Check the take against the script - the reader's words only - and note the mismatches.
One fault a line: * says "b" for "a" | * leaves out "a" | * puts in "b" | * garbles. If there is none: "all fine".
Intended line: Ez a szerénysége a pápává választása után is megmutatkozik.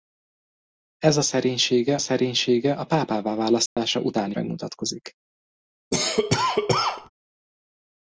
* puts in "szerénysége"
* leaves out "is"